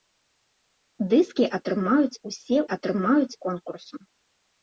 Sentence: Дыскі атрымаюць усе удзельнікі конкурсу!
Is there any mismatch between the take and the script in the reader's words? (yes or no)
yes